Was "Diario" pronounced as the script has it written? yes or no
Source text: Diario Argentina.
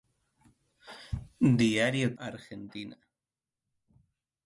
yes